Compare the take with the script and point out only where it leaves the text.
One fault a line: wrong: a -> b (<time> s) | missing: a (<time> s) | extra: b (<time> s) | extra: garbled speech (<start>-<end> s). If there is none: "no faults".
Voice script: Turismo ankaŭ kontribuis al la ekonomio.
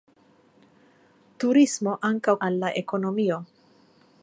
missing: kontribuis (2.4 s)